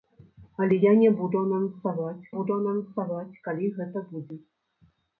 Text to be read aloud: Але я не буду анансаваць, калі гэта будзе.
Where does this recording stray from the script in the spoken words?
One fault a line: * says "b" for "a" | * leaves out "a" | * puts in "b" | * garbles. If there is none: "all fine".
* puts in "буду анансаваць"